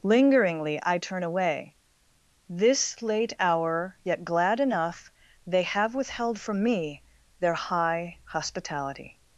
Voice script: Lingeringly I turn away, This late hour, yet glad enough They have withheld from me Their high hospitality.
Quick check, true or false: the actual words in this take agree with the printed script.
true